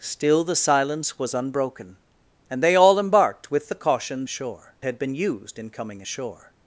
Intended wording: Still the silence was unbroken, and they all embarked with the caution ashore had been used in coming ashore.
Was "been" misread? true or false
false